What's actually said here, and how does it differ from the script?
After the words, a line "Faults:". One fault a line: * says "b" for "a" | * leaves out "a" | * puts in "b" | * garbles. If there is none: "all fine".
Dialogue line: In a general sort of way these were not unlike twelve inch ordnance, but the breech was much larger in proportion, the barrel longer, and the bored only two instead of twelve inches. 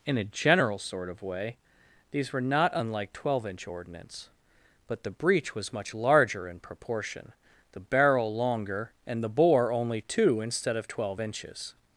In a general sort of way these were not unlike twelve inch ordnance, but the breech was much larger in proportion, the barrel longer, and the bore only two instead of twelve inches.
Faults:
* says "bore" for "bored"